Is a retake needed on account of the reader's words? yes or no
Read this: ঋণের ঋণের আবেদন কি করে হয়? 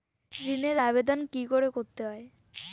yes